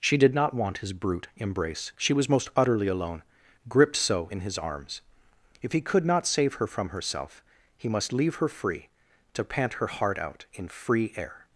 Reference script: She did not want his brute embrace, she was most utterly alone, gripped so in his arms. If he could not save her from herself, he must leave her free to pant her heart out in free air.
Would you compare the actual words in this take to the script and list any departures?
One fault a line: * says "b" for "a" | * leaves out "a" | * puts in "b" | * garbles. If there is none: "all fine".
all fine